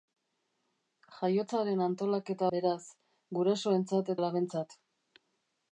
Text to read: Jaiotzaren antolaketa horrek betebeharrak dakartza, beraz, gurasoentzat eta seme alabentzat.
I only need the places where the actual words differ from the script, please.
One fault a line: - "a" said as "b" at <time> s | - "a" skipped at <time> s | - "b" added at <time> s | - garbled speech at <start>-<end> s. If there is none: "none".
- "horrek betebeharrak dakartza" skipped at 2.5 s
- "eta seme" skipped at 4.2 s